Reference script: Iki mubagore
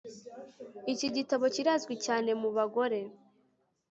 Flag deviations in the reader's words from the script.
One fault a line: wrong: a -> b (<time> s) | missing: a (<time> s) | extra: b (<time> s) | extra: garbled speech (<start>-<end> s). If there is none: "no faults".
extra: gitabo kirazwi cyane (1.1 s)